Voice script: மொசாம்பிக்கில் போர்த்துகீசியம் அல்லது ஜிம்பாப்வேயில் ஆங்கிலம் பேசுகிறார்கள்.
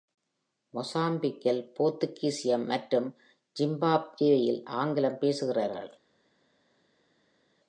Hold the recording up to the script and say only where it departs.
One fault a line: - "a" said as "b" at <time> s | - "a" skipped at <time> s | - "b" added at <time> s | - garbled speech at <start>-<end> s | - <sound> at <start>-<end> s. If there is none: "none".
- "அல்லது" said as "மற்றும்" at 2.7 s